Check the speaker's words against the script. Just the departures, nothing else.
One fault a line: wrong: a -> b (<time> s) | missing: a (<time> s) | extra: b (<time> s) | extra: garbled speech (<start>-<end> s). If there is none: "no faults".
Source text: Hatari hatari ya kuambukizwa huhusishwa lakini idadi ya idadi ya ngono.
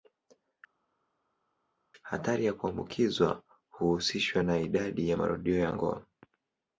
missing: hatari (2.4 s)
wrong: lakini -> na (4.4 s)
wrong: idadi -> marudio (5.1 s)